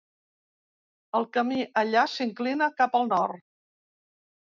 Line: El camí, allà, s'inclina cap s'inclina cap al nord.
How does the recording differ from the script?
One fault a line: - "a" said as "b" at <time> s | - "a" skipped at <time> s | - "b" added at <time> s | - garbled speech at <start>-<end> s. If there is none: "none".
- "s'inclina cap" skipped at 2.9 s